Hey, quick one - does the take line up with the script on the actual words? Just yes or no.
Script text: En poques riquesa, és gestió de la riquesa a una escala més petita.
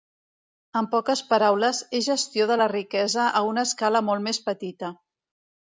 no